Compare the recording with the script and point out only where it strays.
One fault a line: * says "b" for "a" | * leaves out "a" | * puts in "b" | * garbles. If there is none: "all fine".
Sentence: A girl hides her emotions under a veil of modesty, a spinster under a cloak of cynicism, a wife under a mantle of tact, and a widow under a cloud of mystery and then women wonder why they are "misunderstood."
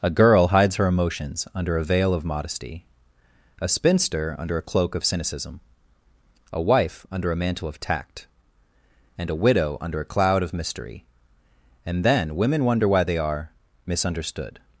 all fine